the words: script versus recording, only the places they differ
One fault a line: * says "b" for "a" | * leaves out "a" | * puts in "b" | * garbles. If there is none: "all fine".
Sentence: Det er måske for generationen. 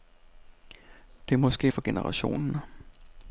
all fine